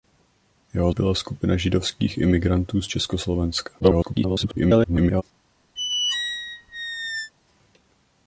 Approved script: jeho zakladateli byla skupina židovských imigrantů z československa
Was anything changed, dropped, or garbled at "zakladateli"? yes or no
yes